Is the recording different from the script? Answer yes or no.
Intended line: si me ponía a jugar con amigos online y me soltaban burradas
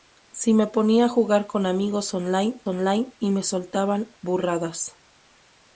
yes